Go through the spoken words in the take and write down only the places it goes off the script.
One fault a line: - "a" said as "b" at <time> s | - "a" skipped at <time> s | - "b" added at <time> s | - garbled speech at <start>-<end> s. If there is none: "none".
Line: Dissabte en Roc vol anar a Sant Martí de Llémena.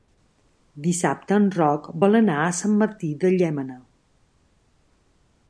none